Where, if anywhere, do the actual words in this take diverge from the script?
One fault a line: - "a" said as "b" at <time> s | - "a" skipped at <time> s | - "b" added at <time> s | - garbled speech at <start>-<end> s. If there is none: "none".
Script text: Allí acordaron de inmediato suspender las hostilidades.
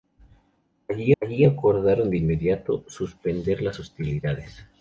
- "allí" added at 1.2 s